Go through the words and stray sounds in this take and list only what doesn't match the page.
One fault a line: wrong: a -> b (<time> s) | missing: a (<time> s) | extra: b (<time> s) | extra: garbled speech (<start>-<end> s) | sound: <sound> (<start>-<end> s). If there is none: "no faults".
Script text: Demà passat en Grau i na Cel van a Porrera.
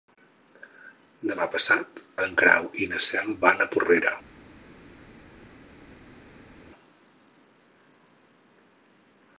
no faults